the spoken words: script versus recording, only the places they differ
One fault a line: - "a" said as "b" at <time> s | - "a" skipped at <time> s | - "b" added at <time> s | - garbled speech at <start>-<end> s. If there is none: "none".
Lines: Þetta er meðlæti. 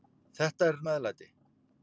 none